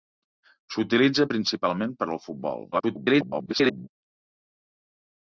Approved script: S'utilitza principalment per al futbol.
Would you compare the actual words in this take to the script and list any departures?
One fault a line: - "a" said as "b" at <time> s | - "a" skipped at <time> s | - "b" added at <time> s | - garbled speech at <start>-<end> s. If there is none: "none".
- garbled speech at 2.7-3.9 s